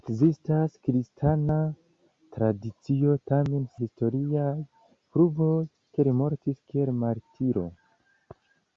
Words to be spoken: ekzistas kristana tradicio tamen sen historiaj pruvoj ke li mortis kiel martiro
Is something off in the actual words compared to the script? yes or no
yes